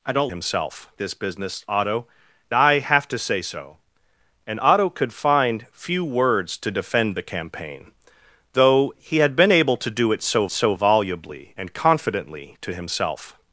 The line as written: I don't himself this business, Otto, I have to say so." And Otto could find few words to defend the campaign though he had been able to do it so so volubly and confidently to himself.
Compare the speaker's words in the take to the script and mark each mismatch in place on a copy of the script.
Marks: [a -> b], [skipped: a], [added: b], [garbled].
I don't himself this business, Otto, I have to say so." And Otto could find few words to defend the campaign though he had been able to do it so so volubly and confidently to himself.